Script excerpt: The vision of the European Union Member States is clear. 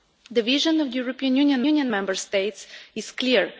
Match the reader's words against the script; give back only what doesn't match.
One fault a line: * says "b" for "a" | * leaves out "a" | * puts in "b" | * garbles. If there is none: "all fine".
* puts in "Union"